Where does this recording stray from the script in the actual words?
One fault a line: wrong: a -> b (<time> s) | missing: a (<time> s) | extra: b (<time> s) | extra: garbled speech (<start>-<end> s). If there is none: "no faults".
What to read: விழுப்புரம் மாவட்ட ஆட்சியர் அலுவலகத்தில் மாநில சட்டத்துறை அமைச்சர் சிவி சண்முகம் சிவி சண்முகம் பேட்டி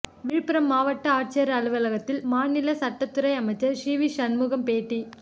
missing: சிவி சண்முகம் (4.7 s)